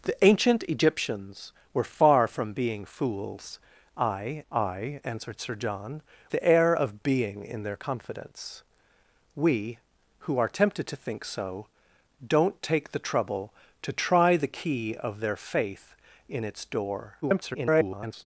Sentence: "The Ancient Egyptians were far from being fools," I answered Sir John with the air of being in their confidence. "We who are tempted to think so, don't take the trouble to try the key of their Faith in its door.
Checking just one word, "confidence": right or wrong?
right